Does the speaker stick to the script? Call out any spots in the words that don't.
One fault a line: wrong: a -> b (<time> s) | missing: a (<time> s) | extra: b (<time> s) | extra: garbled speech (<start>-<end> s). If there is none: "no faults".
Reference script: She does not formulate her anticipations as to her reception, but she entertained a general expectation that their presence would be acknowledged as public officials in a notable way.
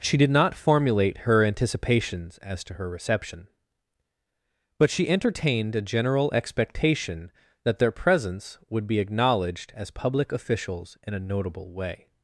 wrong: does -> did (0.2 s)